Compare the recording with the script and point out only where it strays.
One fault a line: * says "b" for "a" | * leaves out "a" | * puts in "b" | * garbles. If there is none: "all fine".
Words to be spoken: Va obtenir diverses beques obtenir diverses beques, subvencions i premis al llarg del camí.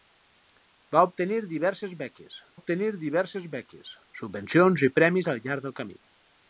all fine